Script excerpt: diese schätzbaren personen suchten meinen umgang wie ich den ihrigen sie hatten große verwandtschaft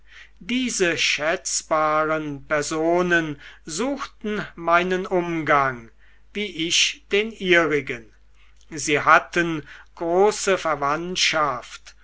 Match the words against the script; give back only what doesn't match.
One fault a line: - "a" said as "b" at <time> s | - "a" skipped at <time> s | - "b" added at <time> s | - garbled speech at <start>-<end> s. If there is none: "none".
none